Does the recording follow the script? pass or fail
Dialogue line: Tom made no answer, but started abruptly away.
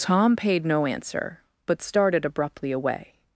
fail